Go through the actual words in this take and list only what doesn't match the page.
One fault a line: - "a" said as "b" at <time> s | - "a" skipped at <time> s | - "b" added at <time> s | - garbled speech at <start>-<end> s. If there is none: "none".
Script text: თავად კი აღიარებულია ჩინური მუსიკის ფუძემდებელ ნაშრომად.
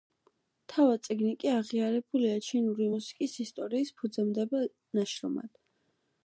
- "წიგნი" added at 1.1 s
- "ისტორიის" added at 3.5 s